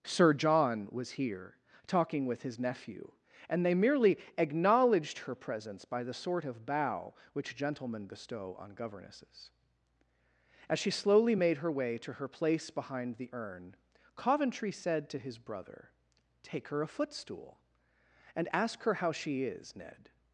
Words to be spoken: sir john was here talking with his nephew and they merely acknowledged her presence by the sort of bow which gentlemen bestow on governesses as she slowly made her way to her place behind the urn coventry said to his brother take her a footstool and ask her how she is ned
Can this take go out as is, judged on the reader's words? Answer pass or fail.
pass